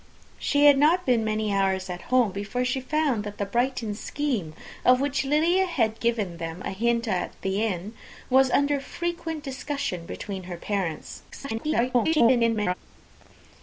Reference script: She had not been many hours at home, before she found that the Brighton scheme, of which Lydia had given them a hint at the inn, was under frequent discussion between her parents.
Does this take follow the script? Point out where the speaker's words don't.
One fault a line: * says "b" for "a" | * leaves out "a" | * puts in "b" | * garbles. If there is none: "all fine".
* garbles